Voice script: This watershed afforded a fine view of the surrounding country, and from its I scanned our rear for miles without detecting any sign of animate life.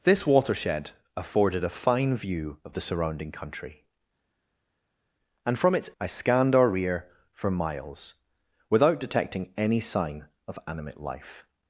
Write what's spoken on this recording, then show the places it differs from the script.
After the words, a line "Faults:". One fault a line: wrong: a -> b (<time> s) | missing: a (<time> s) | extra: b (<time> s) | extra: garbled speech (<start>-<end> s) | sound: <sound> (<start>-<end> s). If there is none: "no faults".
This watershed afforded a fine view of the surrounding country, and from its I scanned our rear for miles without detecting any sign of animate life.
Faults:
no faults